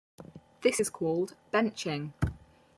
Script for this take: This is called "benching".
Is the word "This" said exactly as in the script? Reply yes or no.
yes